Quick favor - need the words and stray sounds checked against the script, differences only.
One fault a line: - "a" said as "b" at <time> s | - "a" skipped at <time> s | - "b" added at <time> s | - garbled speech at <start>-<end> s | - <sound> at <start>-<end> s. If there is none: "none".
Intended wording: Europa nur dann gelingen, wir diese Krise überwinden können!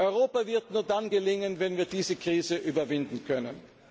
- "wird" added at 0.5 s
- "wenn" added at 1.6 s